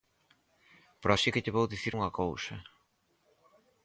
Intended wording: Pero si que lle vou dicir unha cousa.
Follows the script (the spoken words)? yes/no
yes